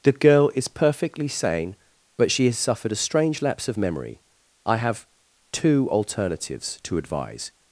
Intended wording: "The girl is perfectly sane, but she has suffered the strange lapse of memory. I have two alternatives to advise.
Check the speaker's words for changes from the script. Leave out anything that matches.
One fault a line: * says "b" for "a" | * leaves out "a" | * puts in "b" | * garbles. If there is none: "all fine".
* says "a" for "the"